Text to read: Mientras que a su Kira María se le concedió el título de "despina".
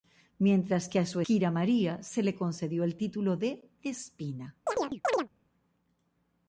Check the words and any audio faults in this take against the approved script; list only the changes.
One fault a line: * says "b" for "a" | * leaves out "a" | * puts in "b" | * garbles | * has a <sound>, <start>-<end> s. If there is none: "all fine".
* has a chirp, 4.7-5.3 s